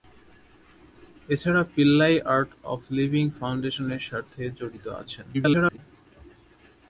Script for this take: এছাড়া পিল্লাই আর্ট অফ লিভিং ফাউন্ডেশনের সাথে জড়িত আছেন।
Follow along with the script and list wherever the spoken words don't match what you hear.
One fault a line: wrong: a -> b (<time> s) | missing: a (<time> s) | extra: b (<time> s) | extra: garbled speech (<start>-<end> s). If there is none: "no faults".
extra: garbled speech (5.3-5.8 s)